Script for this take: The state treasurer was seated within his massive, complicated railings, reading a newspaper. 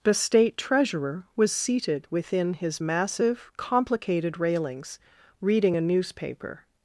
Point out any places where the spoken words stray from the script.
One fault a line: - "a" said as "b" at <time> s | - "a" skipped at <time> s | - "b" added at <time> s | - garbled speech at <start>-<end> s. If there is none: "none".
none